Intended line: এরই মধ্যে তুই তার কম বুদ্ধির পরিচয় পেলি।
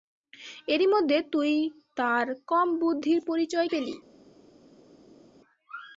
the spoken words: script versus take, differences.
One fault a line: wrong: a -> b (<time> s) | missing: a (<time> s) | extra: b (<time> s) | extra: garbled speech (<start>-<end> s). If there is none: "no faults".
no faults